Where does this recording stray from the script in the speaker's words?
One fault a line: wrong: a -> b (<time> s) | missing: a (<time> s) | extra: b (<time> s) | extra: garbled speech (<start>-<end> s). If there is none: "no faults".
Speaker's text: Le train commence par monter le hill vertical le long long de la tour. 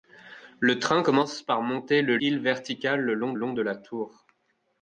no faults